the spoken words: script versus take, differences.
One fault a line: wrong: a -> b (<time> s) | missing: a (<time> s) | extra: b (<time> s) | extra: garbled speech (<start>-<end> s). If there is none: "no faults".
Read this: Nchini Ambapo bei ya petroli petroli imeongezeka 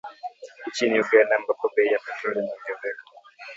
extra: Uganda (1.0 s)
missing: petroli (2.4 s)